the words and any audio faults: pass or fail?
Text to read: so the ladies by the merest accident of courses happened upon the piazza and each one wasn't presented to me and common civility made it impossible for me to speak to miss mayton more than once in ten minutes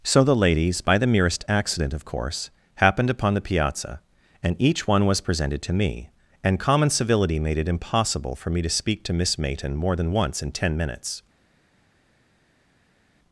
fail